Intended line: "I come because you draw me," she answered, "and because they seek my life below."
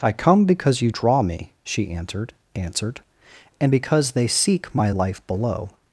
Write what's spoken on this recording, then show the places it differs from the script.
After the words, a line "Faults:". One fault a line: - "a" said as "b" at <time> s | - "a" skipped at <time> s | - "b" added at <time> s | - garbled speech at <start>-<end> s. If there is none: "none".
"I come because you draw me," she answered answered, "and because they seek my life below."
Faults:
- "answered" added at 2.5 s